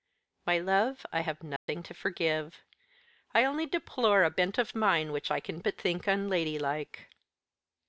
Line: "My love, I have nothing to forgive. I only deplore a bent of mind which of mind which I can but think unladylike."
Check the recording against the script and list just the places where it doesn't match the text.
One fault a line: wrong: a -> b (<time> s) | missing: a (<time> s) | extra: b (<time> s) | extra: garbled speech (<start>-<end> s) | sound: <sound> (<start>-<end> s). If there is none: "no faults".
sound: dropout (1.6-1.7 s)
missing: of mind which (5.3 s)